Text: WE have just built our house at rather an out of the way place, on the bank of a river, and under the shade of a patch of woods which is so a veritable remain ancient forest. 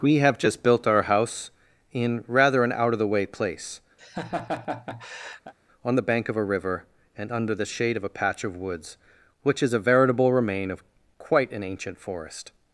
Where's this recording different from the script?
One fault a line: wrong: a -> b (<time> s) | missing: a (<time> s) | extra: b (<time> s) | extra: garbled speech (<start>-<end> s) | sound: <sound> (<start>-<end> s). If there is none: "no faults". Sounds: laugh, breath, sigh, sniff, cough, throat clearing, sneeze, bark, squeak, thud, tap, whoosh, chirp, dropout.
wrong: at -> in (1.9 s)
sound: laugh (4.0-5.5 s)
missing: so (9.7 s)
extra: of quite an (10.7 s)